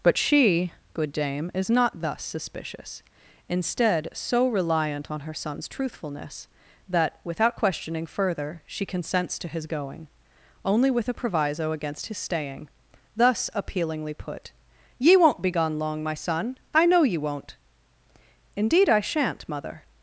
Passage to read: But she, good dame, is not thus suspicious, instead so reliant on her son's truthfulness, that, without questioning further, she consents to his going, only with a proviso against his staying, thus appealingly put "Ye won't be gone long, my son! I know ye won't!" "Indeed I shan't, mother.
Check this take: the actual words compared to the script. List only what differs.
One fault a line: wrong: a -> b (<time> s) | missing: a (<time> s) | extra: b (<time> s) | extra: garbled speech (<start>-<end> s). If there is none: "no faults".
no faults